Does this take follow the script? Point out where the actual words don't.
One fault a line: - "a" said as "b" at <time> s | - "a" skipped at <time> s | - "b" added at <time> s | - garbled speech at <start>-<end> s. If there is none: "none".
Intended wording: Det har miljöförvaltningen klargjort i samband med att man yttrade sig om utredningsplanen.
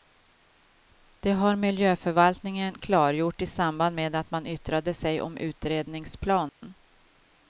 none